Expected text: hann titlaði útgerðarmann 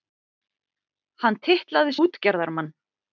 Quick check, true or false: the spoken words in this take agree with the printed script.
true